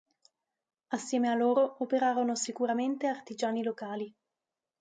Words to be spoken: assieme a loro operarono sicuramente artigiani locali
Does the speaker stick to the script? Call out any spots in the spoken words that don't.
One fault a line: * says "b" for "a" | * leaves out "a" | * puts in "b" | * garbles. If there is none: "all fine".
all fine